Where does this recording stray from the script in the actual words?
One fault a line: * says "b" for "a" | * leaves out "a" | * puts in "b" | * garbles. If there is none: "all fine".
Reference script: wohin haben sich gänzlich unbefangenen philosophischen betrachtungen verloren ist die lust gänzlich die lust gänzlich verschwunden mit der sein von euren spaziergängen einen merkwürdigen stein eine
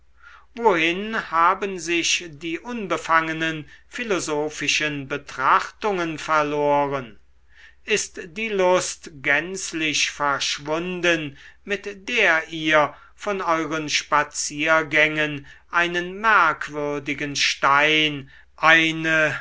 * says "die" for "gänzlich"
* leaves out "die lust gänzlich"
* says "ihr" for "sein"